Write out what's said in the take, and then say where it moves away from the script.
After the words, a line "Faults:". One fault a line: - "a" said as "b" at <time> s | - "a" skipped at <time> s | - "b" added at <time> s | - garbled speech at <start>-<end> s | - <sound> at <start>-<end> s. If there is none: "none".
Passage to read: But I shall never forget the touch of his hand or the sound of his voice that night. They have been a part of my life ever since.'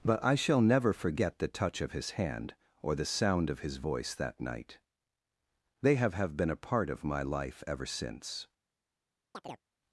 But I shall never forget the touch of his hand or the sound of his voice that night. They have have been a part of my life ever since.'
Faults:
- "have" added at 6.2 s
- chirp at 9.3-9.7 s